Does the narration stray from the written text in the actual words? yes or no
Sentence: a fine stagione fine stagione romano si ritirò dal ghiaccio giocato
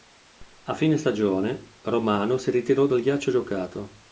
yes